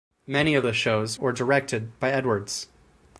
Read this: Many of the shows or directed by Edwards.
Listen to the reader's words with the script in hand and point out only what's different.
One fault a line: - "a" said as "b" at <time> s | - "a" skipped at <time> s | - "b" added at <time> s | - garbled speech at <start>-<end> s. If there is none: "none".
none